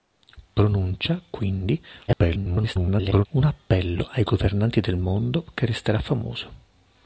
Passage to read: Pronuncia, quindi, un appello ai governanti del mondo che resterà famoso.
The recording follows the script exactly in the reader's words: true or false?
false